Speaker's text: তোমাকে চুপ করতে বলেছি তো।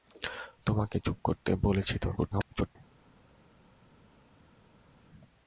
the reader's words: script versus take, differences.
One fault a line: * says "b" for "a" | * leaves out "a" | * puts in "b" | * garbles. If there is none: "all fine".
* garbles